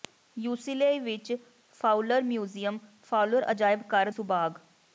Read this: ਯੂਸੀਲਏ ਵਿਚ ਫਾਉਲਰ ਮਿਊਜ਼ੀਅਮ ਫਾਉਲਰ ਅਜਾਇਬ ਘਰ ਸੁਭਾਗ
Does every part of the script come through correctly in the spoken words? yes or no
yes